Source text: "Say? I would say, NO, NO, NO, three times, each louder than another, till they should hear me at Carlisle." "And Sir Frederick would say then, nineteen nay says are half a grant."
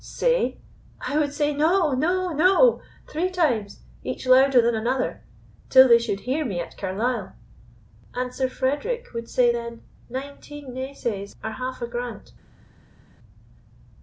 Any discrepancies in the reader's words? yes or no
no